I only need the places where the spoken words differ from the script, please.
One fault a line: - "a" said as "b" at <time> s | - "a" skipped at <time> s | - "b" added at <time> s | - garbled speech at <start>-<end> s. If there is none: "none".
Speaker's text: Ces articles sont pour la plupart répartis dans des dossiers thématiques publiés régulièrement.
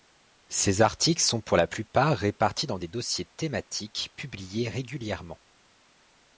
none